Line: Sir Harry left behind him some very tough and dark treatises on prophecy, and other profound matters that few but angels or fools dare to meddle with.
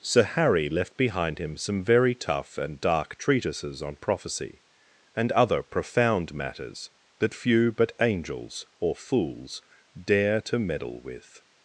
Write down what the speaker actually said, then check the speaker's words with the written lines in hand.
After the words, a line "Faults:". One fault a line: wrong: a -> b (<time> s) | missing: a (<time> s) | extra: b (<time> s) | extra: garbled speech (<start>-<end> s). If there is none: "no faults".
Sir Harry left behind him some very tough and dark treatises on prophecy, and other profound matters that few but angels or fools dare to meddle with.
Faults:
no faults